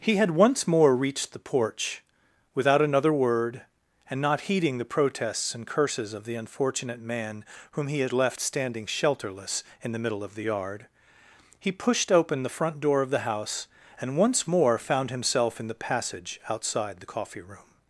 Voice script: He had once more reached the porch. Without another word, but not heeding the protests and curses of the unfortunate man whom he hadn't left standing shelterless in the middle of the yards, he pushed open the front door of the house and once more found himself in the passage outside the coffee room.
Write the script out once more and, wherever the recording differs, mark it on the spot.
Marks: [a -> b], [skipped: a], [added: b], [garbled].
He had once more reached the porch. Without another word, [but -> and] not heeding the protests and curses of the unfortunate man whom he [hadn't -> had] left standing shelterless in the middle of the [yards, -> yard] he pushed open the front door of the house and once more found himself in the passage outside the coffee room.